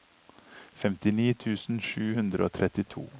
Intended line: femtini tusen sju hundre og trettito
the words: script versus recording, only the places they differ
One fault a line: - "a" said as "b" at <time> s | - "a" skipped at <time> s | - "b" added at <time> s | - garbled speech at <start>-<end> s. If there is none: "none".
none